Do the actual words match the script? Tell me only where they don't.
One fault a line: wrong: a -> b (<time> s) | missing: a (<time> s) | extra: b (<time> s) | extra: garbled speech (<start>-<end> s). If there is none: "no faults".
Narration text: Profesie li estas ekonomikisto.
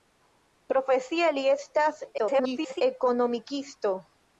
extra: garbled speech (2.2-2.8 s)